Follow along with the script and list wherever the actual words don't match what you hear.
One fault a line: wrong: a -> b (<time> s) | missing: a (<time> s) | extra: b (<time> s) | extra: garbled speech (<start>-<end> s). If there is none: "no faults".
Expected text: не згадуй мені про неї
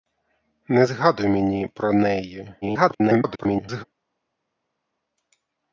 extra: garbled speech (2.6-3.8 s)